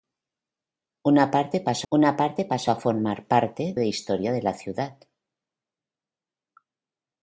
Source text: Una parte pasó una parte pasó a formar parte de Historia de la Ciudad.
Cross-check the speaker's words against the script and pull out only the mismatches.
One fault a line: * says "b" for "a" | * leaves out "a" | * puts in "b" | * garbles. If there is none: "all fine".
all fine